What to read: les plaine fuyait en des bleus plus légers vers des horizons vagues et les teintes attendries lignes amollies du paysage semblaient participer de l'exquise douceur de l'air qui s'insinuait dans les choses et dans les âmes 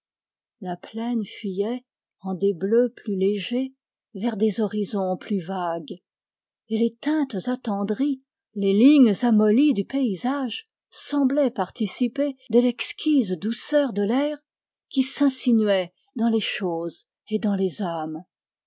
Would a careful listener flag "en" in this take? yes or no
no